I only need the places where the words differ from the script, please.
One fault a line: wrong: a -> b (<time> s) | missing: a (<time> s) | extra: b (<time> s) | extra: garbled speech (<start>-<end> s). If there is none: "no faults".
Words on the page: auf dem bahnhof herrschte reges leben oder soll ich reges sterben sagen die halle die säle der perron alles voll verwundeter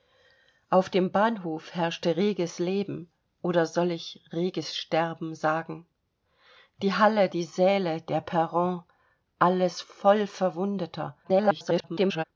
extra: garbled speech (11.2-12.2 s)